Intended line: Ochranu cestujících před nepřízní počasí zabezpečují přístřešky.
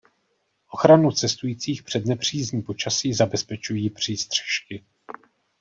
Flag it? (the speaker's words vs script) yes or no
no